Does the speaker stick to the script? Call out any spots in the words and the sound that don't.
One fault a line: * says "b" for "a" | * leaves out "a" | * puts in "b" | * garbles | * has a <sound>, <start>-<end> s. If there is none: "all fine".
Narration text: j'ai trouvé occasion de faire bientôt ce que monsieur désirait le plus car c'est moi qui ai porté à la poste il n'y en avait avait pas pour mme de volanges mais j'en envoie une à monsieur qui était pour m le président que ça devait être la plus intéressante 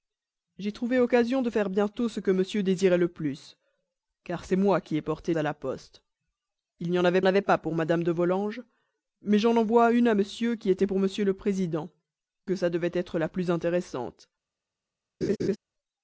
* has a laugh, 15.2-15.6 s